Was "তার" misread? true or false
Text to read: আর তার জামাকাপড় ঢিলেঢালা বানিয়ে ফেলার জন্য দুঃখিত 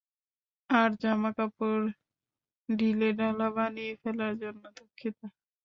true